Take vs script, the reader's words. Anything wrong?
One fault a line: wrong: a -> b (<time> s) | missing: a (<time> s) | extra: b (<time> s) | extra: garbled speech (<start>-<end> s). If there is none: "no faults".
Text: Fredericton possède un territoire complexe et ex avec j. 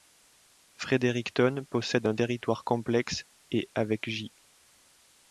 missing: ex (3.7 s)